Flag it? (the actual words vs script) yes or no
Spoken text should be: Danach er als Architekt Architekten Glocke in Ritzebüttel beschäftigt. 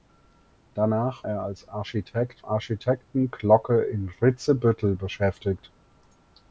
no